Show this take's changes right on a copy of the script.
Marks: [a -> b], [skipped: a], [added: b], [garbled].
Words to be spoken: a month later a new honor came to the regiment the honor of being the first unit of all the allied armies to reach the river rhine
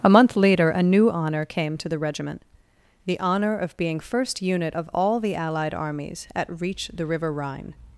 a month later a new honor came to the regiment the honor of being [skipped: the] first unit of all the allied armies [to -> at] reach the river rhine